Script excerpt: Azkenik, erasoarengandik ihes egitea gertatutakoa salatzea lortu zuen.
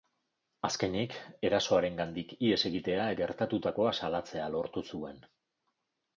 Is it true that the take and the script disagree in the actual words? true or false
false